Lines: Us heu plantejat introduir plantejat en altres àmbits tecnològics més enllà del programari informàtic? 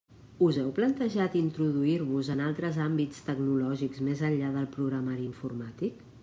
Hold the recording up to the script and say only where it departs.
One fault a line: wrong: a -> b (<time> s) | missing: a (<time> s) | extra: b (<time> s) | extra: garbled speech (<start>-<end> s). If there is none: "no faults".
wrong: plantejat -> vos (2.1 s)